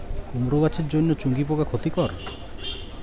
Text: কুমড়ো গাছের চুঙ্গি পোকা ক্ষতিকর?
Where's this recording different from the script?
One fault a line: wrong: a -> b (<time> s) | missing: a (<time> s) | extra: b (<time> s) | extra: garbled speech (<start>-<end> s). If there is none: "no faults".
extra: জন্য (0.9 s)